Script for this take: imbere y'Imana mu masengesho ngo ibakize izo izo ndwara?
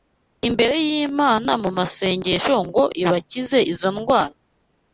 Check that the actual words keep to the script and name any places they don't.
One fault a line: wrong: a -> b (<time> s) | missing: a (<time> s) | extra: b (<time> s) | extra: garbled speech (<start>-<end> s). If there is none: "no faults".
missing: izo (3.9 s)